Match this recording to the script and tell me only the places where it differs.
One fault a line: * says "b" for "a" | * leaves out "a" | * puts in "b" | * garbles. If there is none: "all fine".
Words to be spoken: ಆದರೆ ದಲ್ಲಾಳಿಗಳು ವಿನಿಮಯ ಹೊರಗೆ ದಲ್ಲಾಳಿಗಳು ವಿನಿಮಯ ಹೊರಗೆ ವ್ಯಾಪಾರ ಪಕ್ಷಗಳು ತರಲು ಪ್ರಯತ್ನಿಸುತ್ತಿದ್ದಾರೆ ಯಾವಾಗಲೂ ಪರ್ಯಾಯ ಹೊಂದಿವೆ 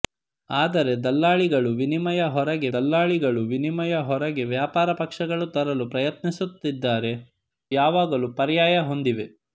all fine